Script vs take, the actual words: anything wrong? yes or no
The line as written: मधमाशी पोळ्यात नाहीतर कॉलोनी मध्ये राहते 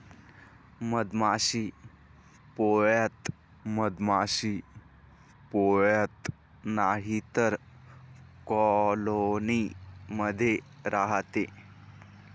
yes